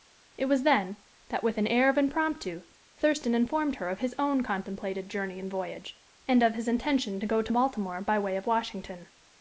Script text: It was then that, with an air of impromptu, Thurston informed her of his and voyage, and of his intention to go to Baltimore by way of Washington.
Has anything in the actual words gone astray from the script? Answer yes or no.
yes